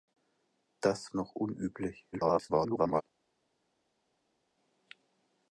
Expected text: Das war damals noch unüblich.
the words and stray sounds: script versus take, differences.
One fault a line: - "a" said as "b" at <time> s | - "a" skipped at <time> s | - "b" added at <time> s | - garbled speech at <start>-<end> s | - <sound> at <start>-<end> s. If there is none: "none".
- "war damals" skipped at 1.1 s
- garbled speech at 2.1-3.0 s